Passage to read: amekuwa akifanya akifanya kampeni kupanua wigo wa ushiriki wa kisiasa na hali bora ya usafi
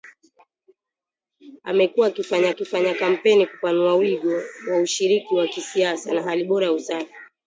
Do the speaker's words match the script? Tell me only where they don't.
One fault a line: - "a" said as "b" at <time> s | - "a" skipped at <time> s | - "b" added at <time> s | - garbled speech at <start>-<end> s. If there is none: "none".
none